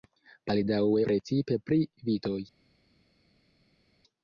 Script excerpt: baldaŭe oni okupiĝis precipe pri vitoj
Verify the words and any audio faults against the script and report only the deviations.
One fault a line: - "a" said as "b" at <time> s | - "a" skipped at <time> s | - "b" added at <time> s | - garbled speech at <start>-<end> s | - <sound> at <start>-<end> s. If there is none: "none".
- "oni okupiĝis" skipped at 1.0 s